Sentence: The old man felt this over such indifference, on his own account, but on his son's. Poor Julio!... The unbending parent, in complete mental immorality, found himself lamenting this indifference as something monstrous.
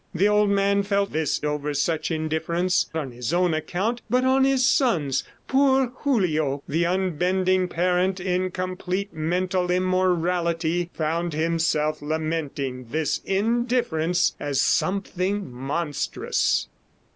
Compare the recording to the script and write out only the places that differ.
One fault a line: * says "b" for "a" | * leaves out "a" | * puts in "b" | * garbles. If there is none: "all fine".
all fine